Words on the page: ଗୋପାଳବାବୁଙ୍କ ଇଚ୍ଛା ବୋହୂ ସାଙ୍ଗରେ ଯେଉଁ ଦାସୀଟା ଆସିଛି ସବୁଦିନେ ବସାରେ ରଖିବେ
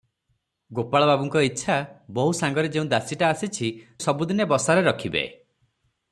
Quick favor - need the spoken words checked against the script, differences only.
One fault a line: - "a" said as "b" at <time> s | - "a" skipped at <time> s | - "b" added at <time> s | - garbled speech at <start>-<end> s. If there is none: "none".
none